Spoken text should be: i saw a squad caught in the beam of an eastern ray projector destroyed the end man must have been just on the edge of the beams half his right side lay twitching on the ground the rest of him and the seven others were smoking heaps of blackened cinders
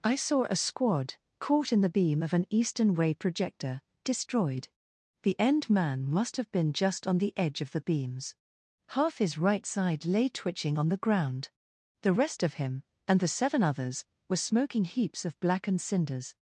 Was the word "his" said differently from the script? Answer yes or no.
no